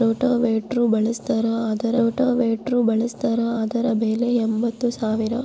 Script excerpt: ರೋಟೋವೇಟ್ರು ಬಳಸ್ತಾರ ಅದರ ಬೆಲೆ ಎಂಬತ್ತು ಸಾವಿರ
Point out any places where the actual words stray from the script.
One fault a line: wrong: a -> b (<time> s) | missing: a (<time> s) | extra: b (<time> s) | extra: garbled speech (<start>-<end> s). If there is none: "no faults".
extra: ರೋಟೋವೇಟ್ರು ಬಳಸ್ತಾರ ಅದರ (2.0 s)